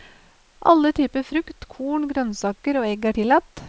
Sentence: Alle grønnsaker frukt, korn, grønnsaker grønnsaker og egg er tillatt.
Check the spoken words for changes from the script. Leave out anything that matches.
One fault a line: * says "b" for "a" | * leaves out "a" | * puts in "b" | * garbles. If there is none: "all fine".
* says "typer" for "grønnsaker"
* leaves out "grønnsaker"